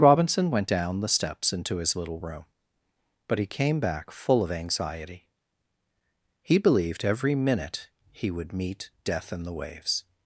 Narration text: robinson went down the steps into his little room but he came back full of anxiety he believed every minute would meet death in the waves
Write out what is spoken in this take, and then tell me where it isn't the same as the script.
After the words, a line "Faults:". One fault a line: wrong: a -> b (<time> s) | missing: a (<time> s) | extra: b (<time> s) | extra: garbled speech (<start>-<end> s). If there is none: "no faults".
robinson went down the steps into his little room but he came back full of anxiety he believed every minute he would meet death in the waves
Faults:
extra: he (8.1 s)